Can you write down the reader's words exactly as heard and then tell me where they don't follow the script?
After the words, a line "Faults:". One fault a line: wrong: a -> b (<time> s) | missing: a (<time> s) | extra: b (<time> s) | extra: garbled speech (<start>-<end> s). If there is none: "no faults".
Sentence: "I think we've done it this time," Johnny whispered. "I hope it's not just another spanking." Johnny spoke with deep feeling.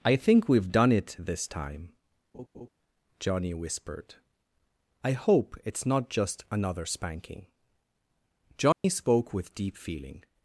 "I think we've done it this time," Johnny whispered. "I hope it's not just another spanking." Johnny spoke with deep feeling.
Faults:
no faults